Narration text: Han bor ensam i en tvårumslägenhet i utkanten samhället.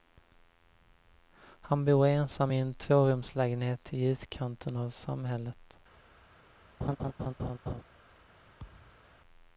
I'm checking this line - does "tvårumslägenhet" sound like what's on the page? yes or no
yes